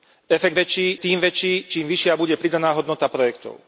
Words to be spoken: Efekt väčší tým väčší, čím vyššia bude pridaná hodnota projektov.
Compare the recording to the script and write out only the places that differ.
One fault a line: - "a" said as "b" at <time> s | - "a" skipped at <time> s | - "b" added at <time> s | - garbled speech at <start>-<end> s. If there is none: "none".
none